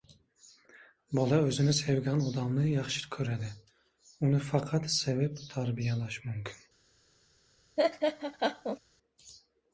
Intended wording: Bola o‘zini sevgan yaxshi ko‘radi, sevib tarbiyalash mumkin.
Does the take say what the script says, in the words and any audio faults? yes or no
no